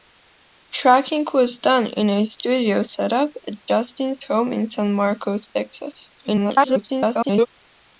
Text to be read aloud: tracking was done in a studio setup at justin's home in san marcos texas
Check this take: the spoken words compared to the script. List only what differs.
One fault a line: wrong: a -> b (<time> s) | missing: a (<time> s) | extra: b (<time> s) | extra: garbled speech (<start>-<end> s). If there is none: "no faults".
extra: garbled speech (6.2-7.5 s)